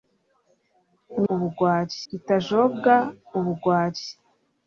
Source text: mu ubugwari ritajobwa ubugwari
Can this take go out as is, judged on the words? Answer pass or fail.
pass